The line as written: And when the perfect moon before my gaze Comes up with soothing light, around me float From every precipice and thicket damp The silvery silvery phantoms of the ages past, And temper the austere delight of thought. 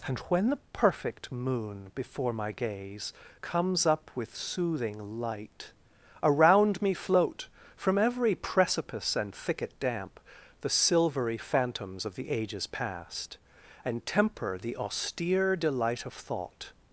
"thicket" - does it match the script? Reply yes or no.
yes